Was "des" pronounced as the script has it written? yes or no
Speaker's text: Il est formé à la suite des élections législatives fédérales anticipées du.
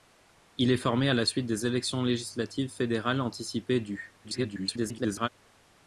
yes